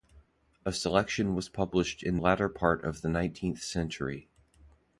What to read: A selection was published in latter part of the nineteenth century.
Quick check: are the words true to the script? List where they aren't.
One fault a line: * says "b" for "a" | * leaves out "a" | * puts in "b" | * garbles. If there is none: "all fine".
all fine